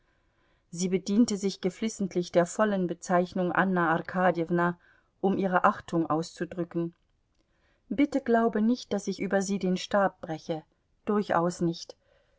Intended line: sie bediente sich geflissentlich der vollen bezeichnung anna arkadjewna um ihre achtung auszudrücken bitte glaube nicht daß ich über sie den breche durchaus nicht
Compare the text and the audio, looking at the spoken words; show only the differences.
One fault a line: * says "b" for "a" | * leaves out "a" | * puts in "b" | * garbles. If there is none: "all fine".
* puts in "stab"